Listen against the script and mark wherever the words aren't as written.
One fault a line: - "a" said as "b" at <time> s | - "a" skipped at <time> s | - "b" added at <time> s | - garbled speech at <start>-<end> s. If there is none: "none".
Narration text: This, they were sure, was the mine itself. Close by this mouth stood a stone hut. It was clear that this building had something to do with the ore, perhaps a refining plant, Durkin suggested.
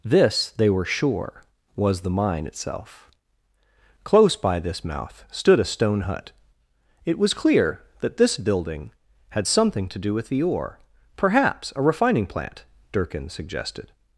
none